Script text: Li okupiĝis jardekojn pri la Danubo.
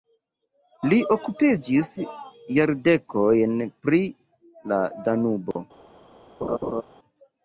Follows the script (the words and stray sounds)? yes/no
no